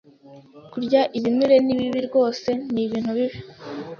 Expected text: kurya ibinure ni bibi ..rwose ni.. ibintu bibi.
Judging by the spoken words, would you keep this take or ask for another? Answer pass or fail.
pass